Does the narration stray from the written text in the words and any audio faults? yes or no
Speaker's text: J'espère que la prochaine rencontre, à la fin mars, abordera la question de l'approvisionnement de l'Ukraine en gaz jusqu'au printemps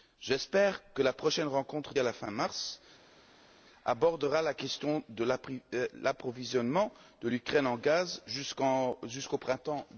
no